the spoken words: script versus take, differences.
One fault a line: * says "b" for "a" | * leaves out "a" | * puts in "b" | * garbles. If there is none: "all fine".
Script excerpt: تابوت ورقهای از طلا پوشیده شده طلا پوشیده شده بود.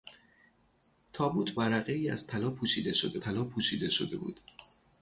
all fine